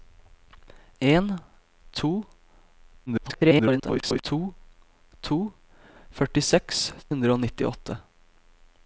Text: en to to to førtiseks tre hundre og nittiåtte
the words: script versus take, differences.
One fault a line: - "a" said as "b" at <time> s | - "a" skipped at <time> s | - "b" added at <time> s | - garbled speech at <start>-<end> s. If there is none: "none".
- garbled speech at 3.1-4.2 s
- "tre" skipped at 6.8 s